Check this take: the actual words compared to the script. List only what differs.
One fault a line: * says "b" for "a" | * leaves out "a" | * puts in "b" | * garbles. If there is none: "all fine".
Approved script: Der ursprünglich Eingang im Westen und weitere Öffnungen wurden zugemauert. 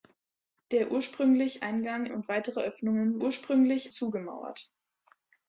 * leaves out "im Westen"
* says "ursprünglich" for "wurden"